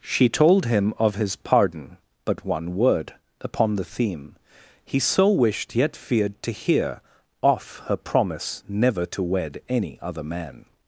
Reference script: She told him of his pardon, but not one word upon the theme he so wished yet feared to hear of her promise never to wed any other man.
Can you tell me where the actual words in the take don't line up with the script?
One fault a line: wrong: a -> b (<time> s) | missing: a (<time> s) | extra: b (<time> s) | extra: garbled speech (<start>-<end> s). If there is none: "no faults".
missing: not (2.4 s)
wrong: of -> off (7.4 s)